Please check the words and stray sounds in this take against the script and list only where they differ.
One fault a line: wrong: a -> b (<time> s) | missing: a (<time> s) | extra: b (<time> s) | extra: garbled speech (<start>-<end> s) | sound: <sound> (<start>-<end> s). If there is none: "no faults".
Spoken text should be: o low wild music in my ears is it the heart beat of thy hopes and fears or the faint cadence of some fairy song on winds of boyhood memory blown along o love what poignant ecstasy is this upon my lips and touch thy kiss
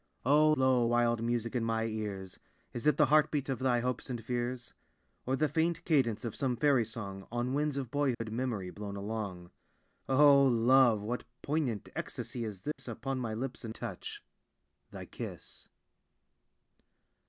sound: dropout (8.1-8.2 s)
sound: dropout (12.7-12.8 s)